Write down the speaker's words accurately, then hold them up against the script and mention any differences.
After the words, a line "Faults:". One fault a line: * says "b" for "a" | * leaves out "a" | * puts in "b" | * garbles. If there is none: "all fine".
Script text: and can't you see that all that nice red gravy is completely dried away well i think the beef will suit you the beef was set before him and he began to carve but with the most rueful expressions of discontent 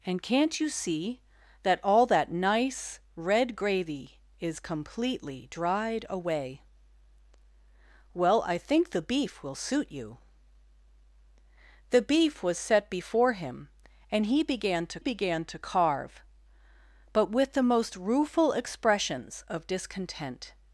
and can't you see that all that nice red gravy is completely dried away well i think the beef will suit you the beef was set before him and he began to began to carve but with the most rueful expressions of discontent
Faults:
* puts in "began to"